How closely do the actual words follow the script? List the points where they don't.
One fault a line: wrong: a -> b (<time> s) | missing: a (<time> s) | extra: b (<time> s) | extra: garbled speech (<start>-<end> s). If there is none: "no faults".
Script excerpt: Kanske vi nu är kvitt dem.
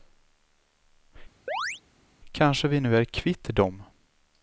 no faults